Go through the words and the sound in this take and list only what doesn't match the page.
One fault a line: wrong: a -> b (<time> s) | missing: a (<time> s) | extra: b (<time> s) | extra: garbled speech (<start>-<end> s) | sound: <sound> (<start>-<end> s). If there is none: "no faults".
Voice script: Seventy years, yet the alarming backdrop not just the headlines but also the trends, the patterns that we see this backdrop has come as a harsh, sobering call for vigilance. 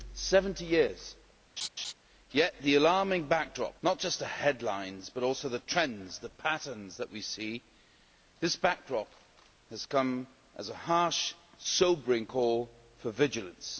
sound: laugh (1.6-1.9 s)